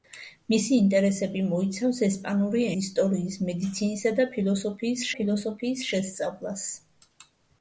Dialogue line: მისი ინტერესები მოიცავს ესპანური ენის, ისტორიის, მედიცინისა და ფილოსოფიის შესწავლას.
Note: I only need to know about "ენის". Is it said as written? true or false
false